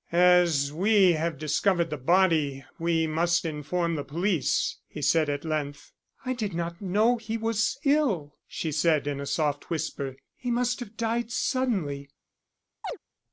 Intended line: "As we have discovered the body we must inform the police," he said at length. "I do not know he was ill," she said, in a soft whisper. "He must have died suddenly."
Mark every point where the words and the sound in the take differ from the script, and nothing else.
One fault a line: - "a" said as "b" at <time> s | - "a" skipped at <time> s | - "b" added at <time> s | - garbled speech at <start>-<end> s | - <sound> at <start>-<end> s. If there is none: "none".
- "do" said as "did" at 6.3 s
- chirp at 12.8-13.0 s